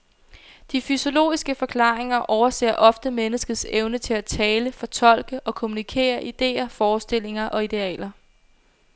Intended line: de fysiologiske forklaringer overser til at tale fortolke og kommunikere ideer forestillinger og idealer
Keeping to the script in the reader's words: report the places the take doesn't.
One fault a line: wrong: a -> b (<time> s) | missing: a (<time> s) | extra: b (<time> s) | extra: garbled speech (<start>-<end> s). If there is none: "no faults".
extra: ofte menneskets evne (2.8 s)